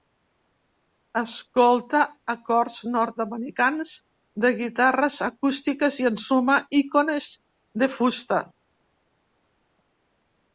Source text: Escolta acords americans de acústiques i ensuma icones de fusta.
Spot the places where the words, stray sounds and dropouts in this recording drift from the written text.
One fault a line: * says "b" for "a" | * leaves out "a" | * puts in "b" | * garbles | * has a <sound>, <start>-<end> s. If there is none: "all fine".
* puts in "nord"
* puts in "guitarres"